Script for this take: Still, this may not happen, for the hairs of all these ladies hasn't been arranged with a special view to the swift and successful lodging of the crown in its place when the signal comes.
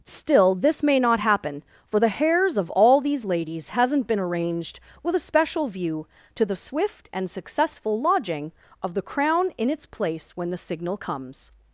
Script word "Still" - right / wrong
right